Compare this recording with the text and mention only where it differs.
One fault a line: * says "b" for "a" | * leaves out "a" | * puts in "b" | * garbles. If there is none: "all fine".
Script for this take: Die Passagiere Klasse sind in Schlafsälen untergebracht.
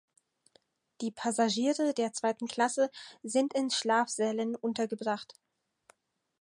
* puts in "der Zweiten"